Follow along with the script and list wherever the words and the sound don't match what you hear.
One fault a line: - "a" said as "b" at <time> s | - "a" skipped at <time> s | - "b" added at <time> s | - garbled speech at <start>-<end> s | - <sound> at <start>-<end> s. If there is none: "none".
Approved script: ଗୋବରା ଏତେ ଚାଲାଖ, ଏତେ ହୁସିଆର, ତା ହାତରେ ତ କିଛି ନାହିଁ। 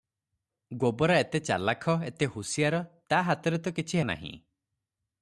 none